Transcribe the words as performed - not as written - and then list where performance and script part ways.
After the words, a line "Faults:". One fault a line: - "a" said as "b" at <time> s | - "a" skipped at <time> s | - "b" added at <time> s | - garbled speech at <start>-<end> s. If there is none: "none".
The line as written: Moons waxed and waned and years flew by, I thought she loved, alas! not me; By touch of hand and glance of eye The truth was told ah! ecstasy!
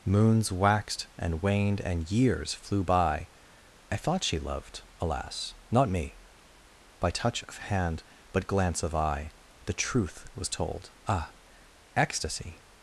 Moons waxed and waned and years flew by, I thought she loved, alas! not me; By touch of hand but glance of eye The truth was told ah! ecstasy!
Faults:
- "and" said as "but" at 8.3 s